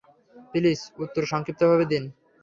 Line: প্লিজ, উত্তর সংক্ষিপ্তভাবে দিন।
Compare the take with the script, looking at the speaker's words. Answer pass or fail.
pass